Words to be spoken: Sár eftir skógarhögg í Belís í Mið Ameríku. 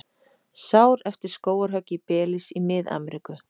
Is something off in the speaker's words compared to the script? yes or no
no